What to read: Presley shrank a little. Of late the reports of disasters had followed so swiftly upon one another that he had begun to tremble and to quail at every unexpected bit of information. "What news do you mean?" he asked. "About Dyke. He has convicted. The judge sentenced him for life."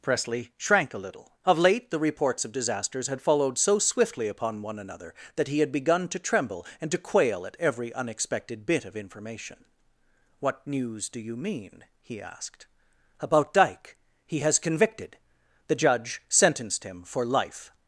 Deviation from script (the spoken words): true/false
false